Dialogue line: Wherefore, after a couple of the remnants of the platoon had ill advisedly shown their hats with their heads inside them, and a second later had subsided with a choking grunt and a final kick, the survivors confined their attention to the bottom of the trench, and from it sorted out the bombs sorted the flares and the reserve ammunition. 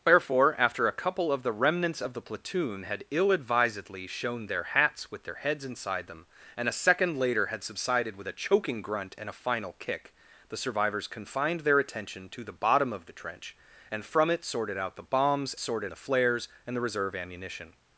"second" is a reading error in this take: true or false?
false